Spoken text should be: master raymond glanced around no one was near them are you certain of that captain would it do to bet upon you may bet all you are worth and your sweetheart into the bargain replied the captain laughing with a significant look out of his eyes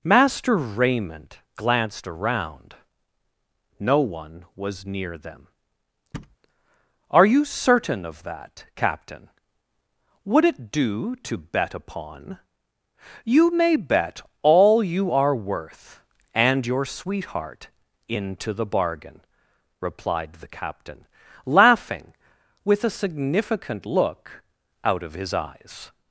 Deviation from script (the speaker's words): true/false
false